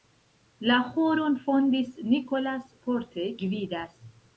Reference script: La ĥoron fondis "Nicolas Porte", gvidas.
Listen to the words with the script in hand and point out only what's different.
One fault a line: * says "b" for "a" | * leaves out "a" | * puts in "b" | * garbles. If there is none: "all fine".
all fine